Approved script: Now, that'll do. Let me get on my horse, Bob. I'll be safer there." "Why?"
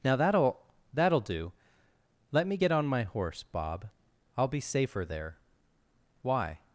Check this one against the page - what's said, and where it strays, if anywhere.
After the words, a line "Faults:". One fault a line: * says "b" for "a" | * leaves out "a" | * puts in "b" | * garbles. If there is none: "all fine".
Now, that'll that'll do. Let me get on my horse, Bob. I'll be safer there." "Why?"
Faults:
* puts in "that'll"